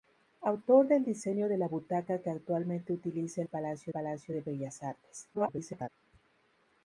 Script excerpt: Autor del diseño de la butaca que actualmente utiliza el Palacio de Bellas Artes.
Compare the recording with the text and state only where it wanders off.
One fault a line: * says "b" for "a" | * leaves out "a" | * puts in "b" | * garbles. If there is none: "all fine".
* puts in "Palacio"
* garbles